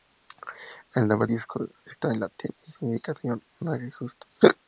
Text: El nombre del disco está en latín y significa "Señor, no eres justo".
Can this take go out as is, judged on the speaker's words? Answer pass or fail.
fail